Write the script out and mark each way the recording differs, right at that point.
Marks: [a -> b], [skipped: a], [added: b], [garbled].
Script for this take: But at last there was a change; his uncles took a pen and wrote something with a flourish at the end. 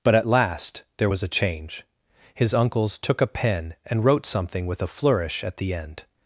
But at last there was a change; his uncles took a pen and wrote something with a flourish at the end.